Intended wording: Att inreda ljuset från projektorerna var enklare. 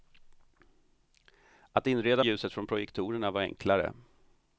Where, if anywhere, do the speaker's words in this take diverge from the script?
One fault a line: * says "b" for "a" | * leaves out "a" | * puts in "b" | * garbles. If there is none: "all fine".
all fine